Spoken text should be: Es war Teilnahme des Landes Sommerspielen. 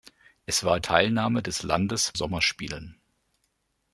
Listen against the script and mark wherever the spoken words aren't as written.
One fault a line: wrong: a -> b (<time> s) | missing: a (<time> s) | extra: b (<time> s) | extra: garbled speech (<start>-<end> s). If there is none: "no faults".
no faults